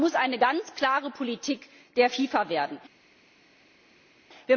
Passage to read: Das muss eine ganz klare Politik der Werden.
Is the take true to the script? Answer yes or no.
no